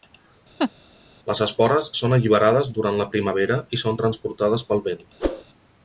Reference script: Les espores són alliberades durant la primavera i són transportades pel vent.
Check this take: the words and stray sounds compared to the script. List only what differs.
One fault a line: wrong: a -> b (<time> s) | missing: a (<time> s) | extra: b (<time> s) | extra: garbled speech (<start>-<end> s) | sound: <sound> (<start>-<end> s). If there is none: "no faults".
sound: laugh (0.6-0.7 s)
sound: whoosh (5.2-5.4 s)